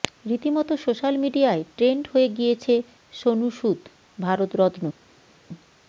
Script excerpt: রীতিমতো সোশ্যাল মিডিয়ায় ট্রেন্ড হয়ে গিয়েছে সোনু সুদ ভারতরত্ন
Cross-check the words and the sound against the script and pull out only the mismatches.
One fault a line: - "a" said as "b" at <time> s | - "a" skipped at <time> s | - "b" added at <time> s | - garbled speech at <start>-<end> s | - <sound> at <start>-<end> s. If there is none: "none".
none